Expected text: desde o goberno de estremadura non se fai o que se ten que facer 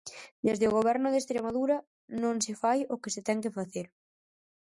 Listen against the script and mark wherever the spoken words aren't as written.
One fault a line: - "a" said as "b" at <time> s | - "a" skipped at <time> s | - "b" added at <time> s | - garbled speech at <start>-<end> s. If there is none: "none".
none